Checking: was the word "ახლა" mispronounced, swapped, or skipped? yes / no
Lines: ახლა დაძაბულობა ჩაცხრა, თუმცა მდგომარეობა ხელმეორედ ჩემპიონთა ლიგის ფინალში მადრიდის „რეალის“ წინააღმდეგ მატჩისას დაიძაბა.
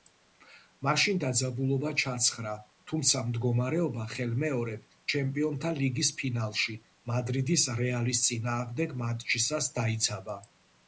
yes